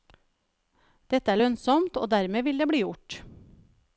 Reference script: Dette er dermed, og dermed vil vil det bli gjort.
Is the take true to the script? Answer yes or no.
no